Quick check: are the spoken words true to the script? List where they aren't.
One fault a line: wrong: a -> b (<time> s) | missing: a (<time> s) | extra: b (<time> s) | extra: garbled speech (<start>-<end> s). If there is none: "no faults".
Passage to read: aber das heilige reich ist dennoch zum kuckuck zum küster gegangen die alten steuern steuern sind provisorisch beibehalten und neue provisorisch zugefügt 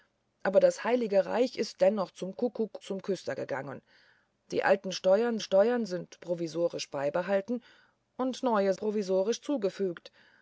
no faults